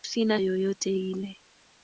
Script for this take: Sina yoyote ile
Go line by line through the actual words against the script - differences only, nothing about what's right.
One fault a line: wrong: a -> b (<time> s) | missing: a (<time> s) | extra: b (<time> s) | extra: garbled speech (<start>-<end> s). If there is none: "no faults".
no faults